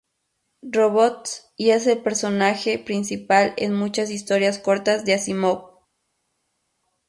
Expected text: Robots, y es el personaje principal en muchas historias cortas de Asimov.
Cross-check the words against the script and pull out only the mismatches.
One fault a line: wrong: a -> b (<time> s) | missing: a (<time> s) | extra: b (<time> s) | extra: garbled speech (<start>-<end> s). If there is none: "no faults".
no faults